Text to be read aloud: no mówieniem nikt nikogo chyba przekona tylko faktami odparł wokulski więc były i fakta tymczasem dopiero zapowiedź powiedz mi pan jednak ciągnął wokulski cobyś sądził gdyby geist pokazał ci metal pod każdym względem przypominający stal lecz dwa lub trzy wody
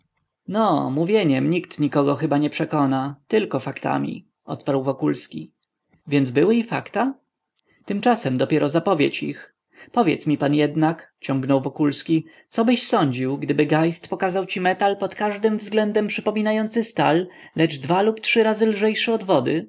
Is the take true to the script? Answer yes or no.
no